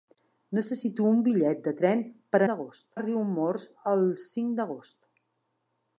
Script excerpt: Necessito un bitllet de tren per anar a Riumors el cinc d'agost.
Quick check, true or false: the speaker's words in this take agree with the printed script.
false